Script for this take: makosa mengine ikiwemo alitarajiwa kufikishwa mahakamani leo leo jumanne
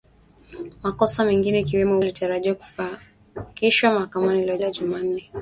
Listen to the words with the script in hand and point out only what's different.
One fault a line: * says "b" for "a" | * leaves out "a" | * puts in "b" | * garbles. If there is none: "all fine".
all fine